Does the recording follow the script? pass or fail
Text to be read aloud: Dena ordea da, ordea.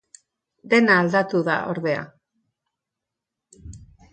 fail